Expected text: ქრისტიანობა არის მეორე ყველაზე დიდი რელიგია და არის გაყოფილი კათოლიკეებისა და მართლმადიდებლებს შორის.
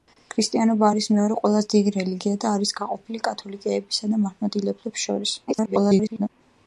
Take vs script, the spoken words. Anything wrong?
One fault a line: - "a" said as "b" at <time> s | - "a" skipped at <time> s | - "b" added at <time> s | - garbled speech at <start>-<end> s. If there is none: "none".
- garbled speech at 5.5-6.3 s